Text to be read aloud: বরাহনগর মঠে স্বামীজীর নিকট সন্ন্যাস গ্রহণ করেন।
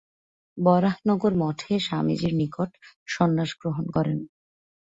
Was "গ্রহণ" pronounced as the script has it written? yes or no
yes